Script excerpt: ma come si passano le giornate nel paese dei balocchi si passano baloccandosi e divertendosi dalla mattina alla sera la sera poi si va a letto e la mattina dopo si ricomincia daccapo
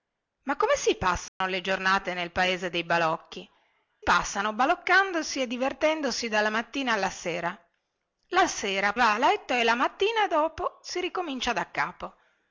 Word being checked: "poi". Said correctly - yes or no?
no